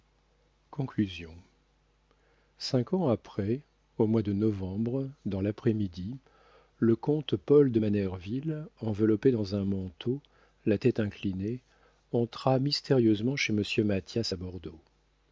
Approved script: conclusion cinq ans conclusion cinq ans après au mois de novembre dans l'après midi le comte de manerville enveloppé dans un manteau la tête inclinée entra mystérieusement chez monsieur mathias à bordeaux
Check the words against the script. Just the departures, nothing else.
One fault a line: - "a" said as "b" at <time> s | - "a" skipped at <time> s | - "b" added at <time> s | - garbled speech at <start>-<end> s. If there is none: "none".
- "conclusion cinq ans" skipped at 3.1 s
- "paul" added at 7.3 s